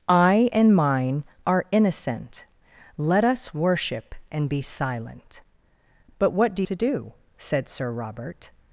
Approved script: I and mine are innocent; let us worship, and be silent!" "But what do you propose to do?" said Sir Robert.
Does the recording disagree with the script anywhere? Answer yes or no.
yes